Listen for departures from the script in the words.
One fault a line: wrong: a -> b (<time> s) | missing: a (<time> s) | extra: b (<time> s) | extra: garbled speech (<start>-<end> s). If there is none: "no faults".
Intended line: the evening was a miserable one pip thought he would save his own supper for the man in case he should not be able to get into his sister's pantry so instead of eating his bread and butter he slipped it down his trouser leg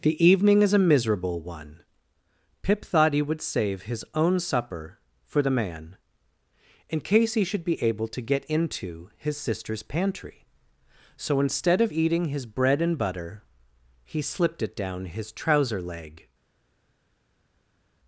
wrong: was -> is (0.6 s)
missing: not (7.6 s)